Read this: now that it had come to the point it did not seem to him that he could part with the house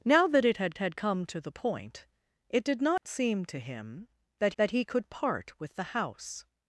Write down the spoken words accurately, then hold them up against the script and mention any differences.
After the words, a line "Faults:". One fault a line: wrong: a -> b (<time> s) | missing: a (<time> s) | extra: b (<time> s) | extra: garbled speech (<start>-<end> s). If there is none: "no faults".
now that it had had come to the point it did not seem to him that that he could part with the house
Faults:
extra: had (0.8 s)
extra: that (4.6 s)